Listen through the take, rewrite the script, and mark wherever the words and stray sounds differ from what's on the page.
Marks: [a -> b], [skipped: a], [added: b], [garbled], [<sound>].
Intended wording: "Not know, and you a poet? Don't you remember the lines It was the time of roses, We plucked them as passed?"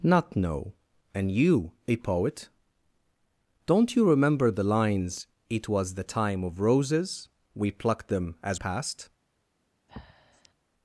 "Not know, and you a poet? Don't you remember the lines It was the time of roses, We plucked them as passed?" [breath]